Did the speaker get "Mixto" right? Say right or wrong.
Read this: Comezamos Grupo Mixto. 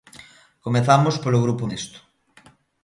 right